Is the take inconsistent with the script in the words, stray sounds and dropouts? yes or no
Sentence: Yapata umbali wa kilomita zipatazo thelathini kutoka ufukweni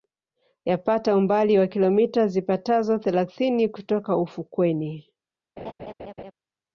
yes